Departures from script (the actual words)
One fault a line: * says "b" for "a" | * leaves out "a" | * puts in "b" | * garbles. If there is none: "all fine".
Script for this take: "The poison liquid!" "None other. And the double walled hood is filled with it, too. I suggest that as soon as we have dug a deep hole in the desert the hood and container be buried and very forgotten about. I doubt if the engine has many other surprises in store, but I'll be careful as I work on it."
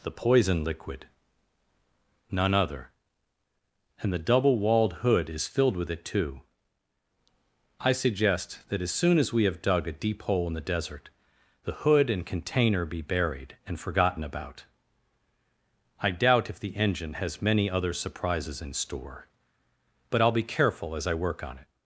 * leaves out "very"